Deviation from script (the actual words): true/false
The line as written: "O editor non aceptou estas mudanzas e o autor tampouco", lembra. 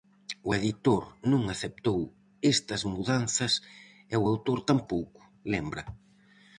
false